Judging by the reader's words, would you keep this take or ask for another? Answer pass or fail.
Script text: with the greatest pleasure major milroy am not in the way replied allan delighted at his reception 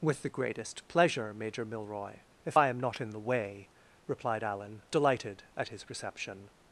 fail